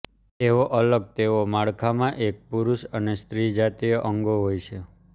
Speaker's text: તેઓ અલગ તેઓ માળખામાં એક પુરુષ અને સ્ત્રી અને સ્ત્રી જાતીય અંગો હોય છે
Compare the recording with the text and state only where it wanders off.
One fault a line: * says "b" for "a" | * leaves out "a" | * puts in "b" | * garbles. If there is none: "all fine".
* leaves out "અને સ્ત્રી"